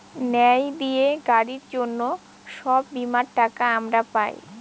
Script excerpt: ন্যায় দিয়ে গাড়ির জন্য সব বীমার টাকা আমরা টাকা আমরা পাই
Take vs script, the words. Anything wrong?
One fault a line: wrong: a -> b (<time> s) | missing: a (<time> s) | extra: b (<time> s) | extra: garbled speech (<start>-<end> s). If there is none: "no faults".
missing: টাকা আমরা (4.0 s)